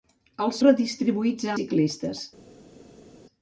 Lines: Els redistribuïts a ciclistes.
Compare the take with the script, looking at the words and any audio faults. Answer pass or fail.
pass